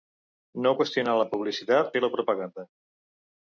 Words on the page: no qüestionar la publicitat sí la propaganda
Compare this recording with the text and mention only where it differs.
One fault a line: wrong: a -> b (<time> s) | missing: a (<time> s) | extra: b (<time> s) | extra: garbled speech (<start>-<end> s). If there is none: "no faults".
no faults